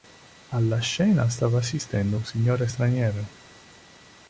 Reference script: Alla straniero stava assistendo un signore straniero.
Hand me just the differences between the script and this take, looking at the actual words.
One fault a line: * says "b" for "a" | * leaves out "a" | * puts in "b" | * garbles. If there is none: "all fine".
* says "scena" for "straniero"